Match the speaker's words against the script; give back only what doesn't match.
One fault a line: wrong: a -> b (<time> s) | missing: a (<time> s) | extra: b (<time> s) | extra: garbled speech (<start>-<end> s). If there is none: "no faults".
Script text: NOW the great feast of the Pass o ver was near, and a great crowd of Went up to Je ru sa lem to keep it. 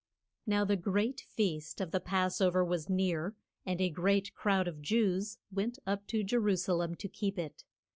extra: Jews (4.8 s)